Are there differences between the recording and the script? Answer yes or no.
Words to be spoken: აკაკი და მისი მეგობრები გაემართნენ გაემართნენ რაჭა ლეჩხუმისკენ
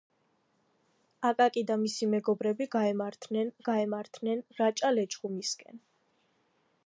no